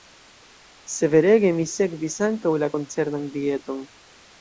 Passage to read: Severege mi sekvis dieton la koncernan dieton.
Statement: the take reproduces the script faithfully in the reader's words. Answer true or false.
false